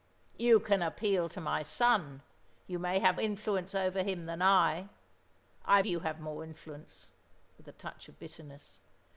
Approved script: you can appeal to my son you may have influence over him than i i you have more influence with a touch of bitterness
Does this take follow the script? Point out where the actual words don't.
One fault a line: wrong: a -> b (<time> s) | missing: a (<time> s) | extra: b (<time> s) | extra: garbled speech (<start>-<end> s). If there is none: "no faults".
no faults